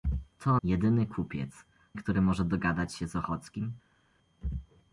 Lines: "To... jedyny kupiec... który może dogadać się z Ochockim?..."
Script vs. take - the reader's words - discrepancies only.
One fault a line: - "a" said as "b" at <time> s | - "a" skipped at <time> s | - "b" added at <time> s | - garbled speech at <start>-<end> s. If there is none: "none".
none